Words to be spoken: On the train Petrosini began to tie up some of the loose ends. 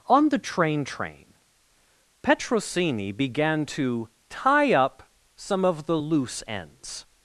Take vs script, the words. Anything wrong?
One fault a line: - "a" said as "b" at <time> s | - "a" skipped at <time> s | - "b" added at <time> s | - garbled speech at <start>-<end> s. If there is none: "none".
- "train" added at 0.8 s